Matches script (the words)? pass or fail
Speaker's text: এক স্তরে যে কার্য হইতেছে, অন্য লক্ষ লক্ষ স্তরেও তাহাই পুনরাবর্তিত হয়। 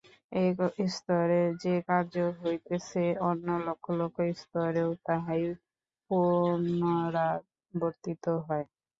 pass